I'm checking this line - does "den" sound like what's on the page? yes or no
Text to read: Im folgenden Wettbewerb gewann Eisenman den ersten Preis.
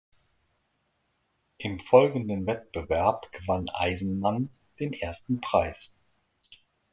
yes